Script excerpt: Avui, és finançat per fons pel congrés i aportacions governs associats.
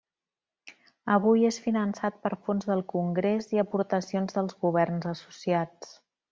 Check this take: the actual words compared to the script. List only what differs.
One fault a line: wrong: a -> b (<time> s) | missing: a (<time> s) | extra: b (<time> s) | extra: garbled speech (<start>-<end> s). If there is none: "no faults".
wrong: pel -> del (2.7 s)
extra: dels (4.4 s)